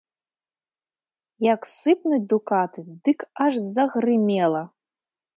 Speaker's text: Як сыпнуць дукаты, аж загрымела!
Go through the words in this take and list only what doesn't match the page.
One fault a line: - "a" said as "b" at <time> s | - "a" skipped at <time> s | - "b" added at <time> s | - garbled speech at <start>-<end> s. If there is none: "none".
- "дык" added at 3.1 s